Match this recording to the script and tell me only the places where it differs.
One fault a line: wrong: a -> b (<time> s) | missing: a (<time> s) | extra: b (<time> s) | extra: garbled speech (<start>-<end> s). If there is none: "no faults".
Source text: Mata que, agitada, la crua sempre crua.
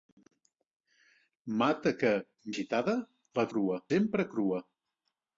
no faults